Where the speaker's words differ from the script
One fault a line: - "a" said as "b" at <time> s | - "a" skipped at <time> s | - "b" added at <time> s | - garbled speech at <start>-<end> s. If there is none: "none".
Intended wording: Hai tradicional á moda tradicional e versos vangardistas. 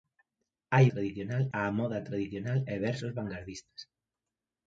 none